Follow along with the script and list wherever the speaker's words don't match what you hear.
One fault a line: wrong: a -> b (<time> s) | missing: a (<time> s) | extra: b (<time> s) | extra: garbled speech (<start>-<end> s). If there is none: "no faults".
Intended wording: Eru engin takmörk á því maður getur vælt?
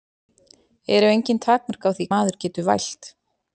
no faults